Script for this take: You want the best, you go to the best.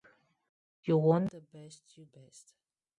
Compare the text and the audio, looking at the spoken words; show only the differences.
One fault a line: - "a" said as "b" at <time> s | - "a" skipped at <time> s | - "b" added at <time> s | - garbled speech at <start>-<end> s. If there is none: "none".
- "go to the" skipped at 2.0 s